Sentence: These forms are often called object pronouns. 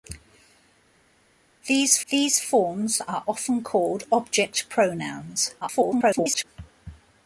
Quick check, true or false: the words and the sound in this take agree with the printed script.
false